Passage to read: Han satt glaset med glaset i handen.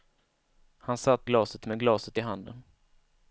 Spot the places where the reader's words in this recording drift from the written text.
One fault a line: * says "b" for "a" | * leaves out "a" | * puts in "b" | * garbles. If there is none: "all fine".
all fine